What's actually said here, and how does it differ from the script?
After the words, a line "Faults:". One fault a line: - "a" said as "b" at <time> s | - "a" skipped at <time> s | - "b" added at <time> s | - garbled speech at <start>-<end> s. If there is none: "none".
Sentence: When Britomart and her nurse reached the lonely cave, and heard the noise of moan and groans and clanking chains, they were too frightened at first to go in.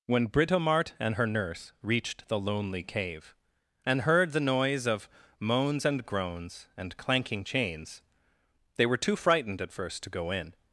When Britomart and her nurse reached the lonely cave, and heard the noise of moans and groans and clanking chains, they were too frightened at first to go in.
Faults:
- "moan" said as "moans" at 5.4 s